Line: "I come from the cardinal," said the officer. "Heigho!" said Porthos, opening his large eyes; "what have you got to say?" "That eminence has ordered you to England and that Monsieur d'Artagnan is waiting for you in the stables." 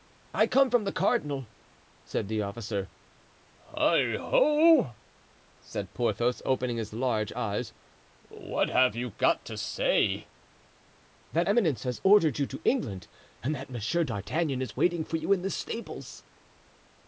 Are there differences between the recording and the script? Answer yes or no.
no